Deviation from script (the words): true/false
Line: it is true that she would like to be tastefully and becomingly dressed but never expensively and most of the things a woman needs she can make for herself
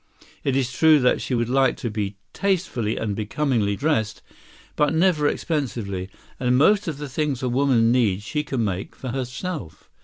false